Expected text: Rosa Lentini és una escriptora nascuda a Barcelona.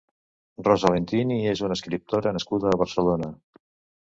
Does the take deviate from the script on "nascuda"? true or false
false